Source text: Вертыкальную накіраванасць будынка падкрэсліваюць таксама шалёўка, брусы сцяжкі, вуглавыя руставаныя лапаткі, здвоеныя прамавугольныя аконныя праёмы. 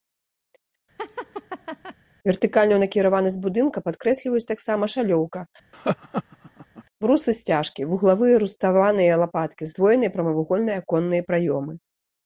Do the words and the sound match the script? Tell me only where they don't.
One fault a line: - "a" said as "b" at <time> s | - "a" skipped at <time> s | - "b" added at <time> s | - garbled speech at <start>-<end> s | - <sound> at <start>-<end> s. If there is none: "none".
- laugh at 1.0-2.0 s
- laugh at 5.7-6.8 s